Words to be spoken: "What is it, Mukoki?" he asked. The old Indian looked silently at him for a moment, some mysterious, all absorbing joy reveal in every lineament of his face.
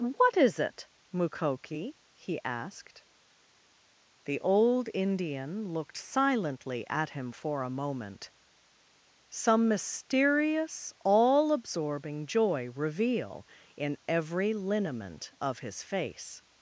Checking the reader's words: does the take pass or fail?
pass